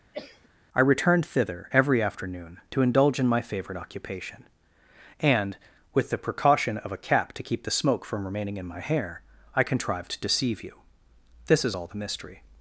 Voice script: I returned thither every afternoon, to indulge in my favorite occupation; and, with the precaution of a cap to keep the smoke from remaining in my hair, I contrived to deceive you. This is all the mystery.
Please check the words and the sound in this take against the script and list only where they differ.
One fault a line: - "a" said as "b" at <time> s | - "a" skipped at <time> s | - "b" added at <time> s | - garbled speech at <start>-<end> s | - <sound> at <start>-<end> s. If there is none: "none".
- cough at 0.1-0.5 s